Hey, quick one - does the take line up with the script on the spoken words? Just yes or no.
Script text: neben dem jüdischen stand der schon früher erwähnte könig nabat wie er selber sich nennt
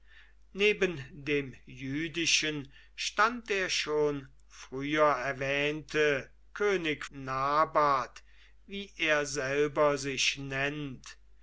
yes